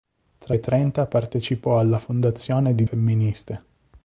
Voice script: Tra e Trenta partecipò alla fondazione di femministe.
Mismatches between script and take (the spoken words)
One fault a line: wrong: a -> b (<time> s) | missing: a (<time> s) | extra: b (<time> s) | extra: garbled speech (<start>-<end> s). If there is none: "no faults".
no faults